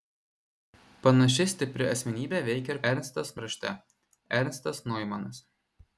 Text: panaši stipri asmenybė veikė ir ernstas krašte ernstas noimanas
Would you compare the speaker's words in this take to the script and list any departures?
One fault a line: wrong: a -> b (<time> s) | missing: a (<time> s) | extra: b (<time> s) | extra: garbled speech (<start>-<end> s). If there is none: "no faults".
no faults